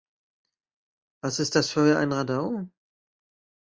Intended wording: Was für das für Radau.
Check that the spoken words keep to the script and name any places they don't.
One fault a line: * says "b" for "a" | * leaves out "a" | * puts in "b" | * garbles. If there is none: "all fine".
* says "ist" for "für"
* puts in "ein"